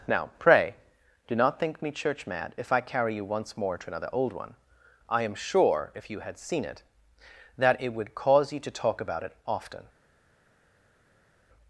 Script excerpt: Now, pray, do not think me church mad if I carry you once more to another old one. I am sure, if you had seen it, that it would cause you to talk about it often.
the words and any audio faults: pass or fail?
pass